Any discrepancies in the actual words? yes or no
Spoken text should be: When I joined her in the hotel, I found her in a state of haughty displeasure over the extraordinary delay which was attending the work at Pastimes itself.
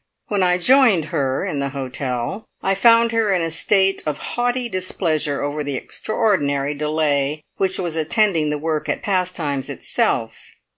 no